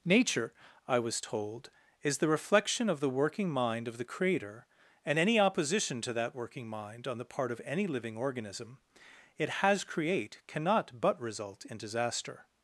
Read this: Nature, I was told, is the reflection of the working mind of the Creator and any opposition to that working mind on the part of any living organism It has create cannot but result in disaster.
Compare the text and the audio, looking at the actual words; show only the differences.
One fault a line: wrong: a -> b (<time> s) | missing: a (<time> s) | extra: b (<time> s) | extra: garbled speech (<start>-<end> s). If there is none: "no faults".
no faults